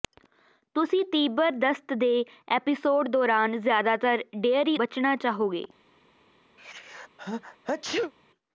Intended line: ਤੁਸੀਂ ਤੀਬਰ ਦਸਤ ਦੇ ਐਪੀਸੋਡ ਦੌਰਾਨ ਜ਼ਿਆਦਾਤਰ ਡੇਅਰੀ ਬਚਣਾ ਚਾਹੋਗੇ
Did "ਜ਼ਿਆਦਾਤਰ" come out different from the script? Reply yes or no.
no